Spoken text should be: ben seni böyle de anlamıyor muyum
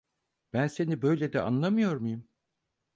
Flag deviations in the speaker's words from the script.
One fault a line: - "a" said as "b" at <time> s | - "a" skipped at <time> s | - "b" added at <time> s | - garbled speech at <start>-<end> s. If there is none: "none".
none